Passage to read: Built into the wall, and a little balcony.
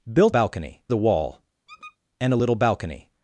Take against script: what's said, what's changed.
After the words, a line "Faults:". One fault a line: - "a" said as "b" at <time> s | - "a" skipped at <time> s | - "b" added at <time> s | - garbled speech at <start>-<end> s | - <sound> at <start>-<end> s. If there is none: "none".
Built balcony the wall, and a little balcony.
Faults:
- "into" said as "balcony" at 0.3 s
- squeak at 1.7-2.0 s